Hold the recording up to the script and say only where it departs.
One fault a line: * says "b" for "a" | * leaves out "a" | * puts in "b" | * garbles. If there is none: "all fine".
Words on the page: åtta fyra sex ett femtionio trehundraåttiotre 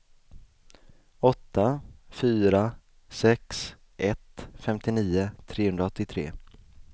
all fine